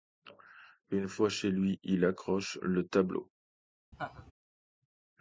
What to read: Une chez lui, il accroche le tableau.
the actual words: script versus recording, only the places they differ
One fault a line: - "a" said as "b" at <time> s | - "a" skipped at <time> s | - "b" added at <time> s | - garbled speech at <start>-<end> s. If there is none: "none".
- "fois" added at 1.1 s